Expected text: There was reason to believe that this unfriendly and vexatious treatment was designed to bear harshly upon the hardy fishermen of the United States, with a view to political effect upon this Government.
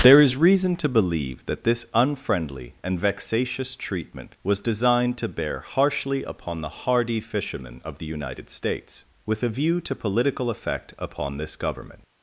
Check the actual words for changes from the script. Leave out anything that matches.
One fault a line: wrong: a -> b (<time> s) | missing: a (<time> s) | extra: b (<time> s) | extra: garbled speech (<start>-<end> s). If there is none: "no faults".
wrong: was -> is (0.2 s)